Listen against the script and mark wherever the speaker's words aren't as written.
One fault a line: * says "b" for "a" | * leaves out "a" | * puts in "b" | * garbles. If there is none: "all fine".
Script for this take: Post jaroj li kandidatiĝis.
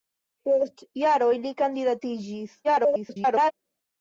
* garbles